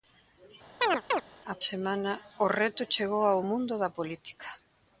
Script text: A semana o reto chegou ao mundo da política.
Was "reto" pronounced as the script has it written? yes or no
yes